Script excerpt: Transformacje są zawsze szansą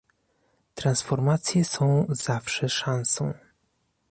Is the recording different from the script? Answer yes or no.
no